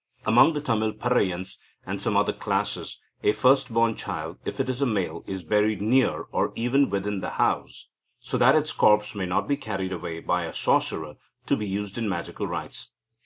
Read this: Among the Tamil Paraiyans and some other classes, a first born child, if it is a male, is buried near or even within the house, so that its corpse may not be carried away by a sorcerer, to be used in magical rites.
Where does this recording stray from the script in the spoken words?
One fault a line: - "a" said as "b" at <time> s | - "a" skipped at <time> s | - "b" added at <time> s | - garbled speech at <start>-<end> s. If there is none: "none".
none